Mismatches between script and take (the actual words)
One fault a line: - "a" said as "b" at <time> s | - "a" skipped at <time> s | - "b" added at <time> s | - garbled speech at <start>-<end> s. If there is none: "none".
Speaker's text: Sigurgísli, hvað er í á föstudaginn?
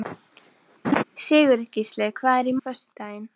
none